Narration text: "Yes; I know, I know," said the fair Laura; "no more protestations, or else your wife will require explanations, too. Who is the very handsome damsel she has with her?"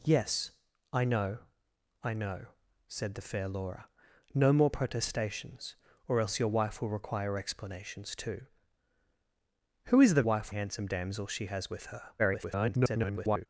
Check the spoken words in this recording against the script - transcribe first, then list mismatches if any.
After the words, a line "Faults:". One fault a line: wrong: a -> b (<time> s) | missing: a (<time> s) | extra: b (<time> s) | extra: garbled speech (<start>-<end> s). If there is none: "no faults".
"Yes; I know, I know," said the fair Laura; "no more protestations, or else your wife will require explanations, too. Who is the wife handsome damsel she has with her?" [garbled]
Faults:
wrong: very -> wife (10.2 s)
extra: garbled speech (12.2-13.5 s)